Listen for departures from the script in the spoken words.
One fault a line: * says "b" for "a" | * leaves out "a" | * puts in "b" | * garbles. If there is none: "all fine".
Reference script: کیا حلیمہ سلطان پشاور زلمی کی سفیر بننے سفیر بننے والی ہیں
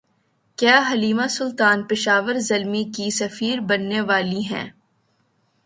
* leaves out "سفیر بننے"